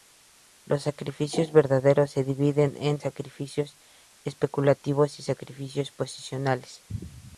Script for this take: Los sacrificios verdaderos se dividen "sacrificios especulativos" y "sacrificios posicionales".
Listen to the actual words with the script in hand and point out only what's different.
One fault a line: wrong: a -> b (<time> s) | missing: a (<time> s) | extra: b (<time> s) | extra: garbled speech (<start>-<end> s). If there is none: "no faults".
extra: en (2.8 s)